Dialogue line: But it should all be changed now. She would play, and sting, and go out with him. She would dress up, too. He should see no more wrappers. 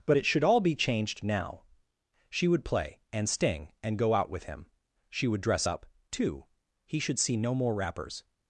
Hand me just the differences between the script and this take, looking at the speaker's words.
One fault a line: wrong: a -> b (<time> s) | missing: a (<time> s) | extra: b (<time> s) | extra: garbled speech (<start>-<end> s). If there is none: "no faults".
no faults